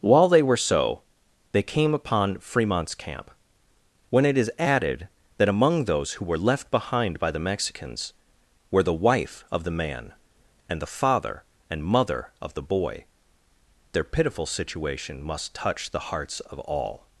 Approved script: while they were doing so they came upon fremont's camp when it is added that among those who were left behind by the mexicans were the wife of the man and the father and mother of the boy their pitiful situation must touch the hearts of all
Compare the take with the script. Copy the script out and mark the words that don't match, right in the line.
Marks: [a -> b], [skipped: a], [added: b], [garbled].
while they were [skipped: doing] so they came upon fremont's camp when it is added that among those who were left behind by the mexicans were the wife of the man and the father and mother of the boy their pitiful situation must touch the hearts of all